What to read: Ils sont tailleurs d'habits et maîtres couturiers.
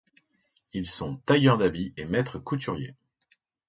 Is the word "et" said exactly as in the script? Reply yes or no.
yes